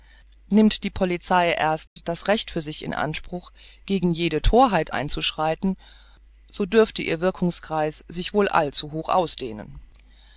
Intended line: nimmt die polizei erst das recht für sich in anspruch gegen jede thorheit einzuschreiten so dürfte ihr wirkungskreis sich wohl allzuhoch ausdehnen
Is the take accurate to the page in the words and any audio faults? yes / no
no